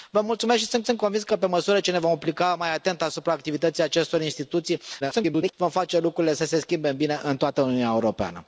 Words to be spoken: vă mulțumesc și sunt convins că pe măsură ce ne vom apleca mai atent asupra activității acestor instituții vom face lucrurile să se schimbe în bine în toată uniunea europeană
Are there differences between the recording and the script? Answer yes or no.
yes